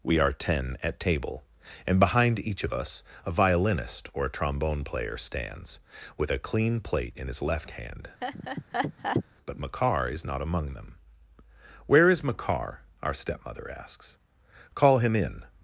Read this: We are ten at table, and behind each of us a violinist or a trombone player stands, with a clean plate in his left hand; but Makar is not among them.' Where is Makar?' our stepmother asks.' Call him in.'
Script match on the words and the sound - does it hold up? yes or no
no